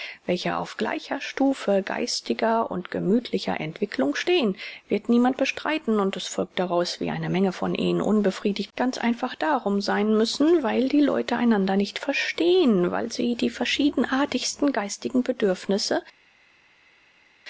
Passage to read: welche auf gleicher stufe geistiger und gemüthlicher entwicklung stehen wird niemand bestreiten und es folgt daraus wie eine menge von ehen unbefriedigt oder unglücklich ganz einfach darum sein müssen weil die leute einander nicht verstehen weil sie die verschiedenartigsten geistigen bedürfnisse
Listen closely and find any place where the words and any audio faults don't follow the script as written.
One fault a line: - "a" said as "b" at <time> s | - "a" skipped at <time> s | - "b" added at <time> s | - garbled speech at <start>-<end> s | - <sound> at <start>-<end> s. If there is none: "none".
- "oder unglücklich" skipped at 8.7 s